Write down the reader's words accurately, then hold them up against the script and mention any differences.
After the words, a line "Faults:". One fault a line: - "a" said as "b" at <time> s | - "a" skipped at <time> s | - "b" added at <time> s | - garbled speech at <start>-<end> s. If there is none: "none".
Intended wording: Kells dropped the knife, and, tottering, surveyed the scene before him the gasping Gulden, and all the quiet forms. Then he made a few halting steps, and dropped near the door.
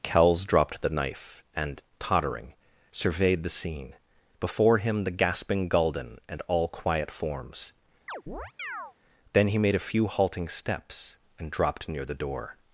Kells dropped the knife, and, tottering, surveyed the scene before him the gasping Gulden, and all quiet forms. Then he made a few halting steps, and dropped near the door.
Faults:
- "the" skipped at 6.7 s